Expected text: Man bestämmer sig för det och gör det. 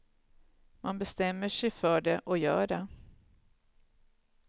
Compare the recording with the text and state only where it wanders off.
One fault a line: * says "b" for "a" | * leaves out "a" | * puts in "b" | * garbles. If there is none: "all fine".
all fine